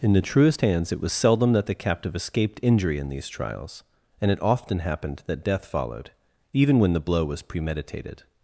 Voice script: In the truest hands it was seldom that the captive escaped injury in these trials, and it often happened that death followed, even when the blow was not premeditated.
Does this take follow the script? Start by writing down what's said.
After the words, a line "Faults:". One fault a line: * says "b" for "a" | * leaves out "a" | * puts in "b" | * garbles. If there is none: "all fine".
In the truest hands it was seldom that the captive escaped injury in these trials, and it often happened that death followed, even when the blow was premeditated.
Faults:
* leaves out "not"